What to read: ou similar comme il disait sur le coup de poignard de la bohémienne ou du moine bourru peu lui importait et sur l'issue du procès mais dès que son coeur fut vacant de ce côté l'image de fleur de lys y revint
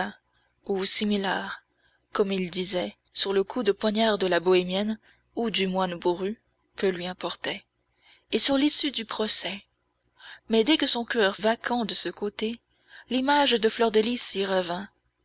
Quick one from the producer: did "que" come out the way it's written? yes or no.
yes